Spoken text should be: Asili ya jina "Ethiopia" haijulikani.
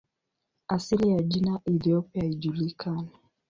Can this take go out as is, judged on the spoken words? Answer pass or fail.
pass